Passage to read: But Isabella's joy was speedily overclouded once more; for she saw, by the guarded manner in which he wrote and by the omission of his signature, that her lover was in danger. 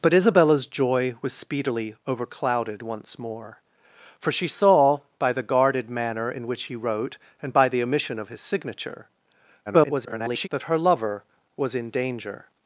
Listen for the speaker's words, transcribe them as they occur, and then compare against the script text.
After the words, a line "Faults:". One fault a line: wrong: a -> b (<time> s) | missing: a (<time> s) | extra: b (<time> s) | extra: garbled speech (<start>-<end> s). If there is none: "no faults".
But Isabella's joy was speedily overclouded once more; for she saw, by the guarded manner in which he wrote and by the omission of his signature, [garbled] that her lover was in danger.
Faults:
extra: garbled speech (9.7-10.5 s)